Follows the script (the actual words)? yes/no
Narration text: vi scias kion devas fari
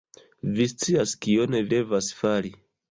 yes